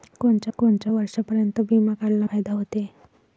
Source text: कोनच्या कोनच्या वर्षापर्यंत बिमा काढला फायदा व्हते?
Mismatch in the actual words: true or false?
false